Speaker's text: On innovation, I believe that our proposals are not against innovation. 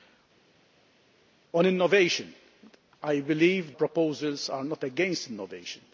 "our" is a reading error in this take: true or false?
true